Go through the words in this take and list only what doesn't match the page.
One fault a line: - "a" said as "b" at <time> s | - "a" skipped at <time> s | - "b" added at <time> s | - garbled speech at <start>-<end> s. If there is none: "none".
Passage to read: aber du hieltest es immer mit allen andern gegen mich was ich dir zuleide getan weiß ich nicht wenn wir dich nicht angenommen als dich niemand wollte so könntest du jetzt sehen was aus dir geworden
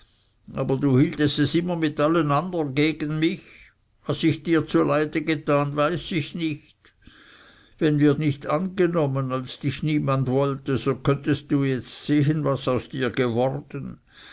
- "dich" skipped at 8.2 s